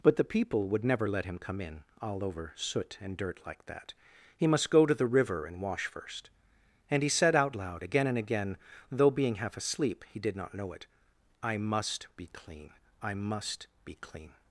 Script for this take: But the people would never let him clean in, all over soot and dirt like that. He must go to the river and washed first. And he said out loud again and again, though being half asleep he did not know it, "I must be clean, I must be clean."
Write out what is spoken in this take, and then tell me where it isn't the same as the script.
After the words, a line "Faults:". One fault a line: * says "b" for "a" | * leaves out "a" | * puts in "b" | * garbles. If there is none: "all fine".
But the people would never let him come in, all over soot and dirt like that. He must go to the river and wash first. And he said out loud again and again, though being half asleep he did not know it, "I must be clean, I must be clean."
Faults:
* says "come" for "clean"
* says "wash" for "washed"